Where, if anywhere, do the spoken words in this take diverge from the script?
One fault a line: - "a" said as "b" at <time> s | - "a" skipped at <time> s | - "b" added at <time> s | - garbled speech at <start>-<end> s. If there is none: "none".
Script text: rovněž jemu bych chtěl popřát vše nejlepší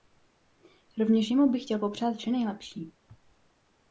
none